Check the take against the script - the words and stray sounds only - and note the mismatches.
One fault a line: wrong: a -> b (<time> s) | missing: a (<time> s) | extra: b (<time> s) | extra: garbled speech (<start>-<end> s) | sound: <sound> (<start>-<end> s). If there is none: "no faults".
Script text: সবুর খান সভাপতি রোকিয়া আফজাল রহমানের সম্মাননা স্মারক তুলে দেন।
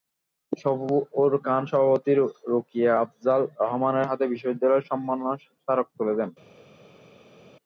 extra: হাতে বিশ্ববিদ্যালয়ের (4.1 s)